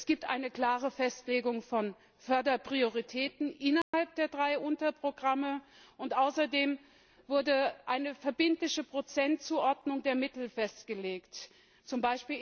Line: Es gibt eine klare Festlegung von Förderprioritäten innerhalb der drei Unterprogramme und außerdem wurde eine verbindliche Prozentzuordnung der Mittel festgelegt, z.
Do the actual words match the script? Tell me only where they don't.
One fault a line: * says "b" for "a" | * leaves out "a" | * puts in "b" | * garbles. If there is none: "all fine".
all fine